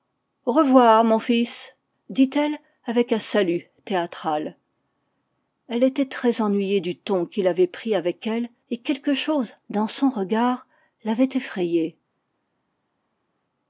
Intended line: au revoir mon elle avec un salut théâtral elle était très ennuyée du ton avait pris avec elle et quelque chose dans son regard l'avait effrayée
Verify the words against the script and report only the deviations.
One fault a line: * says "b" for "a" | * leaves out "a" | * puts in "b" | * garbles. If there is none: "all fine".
* puts in "fils dit"
* puts in "qu'il"